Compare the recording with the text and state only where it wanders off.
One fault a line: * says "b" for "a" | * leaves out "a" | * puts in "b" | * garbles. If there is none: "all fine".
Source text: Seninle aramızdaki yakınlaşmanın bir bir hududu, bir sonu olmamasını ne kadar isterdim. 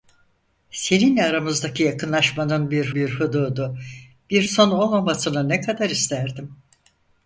all fine